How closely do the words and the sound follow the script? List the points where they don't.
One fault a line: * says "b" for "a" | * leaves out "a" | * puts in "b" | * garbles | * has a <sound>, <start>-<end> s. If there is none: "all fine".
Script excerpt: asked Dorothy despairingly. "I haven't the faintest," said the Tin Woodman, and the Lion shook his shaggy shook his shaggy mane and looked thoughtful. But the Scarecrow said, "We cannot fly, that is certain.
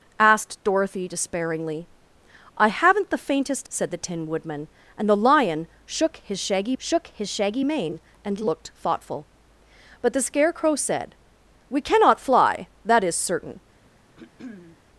* has a throat clearing, 14.2-14.8 s